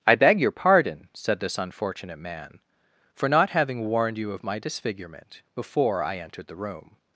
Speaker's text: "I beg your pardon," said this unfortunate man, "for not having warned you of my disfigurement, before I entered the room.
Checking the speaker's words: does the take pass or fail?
pass